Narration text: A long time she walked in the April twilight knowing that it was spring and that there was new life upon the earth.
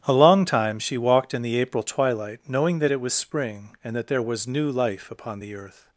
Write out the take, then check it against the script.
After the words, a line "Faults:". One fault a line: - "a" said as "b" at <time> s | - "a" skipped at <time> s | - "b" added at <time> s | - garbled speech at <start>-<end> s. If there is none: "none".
A long time she walked in the April twilight knowing that it was spring and that there was new life upon the earth.
Faults:
none